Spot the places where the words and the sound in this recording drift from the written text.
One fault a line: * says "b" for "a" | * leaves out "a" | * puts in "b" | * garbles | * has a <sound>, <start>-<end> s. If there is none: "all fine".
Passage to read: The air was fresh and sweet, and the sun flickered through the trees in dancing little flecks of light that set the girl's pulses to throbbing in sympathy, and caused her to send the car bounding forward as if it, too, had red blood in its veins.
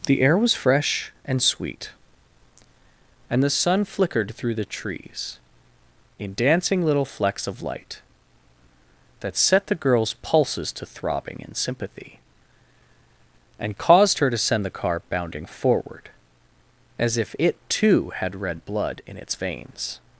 all fine